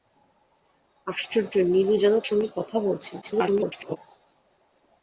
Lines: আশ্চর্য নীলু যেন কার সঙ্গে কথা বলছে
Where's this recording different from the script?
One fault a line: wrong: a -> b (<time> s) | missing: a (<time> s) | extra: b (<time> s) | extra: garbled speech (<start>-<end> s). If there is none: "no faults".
missing: কার (2.1 s)
extra: garbled speech (3.2-4.0 s)